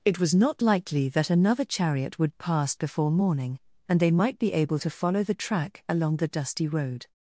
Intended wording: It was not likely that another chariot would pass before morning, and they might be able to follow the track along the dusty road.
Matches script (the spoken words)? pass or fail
pass